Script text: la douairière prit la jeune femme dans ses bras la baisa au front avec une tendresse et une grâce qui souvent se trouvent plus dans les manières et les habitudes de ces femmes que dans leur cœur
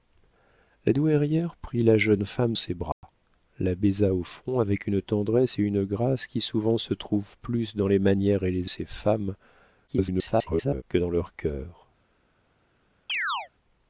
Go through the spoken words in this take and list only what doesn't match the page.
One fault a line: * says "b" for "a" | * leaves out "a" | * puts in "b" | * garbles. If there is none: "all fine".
* leaves out "dans"
* leaves out "habitudes de"
* garbles